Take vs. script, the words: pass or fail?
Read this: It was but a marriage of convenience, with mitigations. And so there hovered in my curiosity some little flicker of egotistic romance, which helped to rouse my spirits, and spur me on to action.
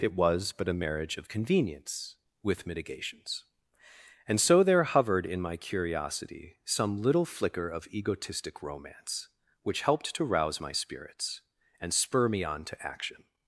pass